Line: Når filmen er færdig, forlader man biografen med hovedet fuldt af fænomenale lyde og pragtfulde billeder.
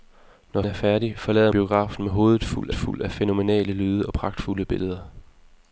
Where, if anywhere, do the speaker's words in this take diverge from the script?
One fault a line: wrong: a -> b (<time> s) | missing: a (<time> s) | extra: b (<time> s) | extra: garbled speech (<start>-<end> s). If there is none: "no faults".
missing: filmen (0.6 s)
missing: man (1.5 s)
extra: fuldt (2.7 s)